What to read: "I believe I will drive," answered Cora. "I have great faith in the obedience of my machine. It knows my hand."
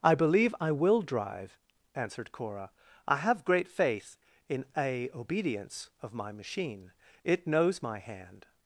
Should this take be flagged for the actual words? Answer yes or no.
yes